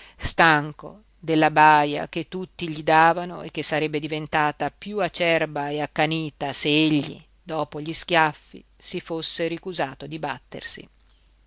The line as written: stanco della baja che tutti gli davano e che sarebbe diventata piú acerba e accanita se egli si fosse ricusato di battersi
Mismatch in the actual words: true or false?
true